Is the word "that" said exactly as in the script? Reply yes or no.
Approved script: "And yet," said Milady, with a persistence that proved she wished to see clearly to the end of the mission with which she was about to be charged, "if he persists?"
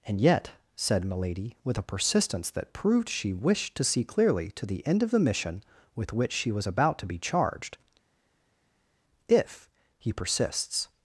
yes